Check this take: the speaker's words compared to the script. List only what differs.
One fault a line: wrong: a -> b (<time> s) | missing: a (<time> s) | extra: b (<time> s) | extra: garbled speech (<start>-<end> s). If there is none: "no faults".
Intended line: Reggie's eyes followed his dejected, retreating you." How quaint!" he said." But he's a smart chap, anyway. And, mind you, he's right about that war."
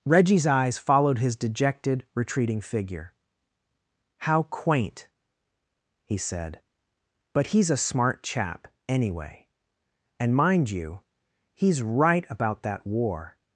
wrong: you -> figure (2.6 s)